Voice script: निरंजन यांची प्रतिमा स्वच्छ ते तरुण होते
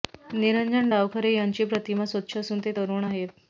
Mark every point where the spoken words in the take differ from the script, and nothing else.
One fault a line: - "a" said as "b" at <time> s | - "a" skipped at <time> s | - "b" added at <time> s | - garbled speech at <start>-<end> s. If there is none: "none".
- "डावखरे" added at 0.9 s
- "असून" added at 2.4 s
- "होते" said as "आहेत" at 3.0 s